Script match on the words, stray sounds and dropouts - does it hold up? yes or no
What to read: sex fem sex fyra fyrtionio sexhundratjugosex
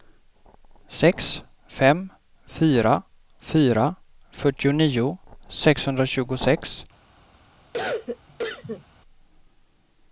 no